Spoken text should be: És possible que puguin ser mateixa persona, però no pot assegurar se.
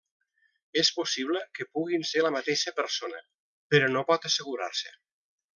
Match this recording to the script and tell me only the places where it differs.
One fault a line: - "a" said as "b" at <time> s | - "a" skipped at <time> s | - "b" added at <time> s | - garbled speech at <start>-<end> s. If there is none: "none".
- "la" added at 2.2 s